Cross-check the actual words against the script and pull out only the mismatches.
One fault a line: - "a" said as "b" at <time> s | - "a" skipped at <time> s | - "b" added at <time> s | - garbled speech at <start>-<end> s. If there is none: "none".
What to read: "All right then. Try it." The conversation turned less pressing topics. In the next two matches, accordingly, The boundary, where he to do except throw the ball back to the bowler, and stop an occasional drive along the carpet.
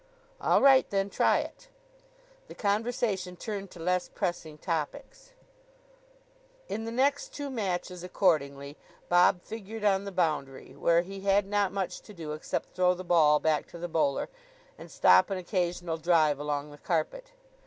- "to" added at 3.7 s
- "Bob figured on" added at 9.1 s
- "had not much" added at 11.2 s